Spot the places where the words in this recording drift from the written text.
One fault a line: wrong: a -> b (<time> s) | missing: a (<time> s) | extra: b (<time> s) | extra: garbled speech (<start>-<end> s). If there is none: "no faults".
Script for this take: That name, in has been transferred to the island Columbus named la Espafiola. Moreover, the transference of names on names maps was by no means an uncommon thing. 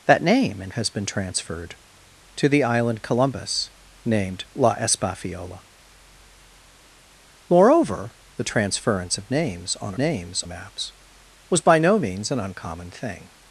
no faults